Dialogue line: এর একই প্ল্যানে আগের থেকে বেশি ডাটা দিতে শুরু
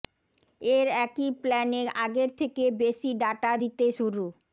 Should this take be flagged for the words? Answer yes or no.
no